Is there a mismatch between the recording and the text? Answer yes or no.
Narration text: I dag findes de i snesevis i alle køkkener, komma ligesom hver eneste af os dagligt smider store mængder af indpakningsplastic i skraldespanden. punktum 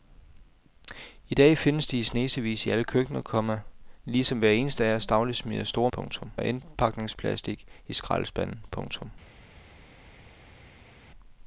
yes